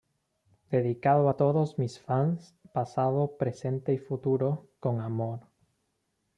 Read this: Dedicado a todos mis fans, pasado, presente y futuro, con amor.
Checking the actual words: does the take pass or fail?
pass